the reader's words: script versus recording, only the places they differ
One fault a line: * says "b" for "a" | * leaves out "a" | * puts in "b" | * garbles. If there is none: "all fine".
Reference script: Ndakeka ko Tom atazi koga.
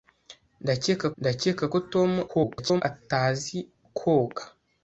* puts in "ndakeka"
* garbles